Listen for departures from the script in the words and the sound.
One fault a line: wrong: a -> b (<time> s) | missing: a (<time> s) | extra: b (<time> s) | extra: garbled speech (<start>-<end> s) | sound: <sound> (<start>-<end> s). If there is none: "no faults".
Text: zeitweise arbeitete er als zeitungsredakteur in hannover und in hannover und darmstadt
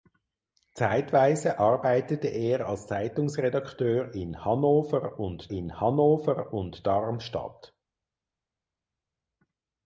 no faults